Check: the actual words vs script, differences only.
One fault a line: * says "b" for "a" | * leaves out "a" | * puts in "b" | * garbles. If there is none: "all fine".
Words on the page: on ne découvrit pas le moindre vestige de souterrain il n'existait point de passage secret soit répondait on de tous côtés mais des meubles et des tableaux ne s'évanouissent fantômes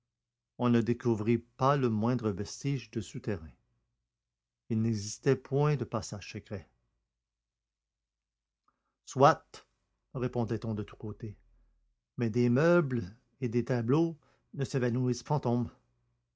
all fine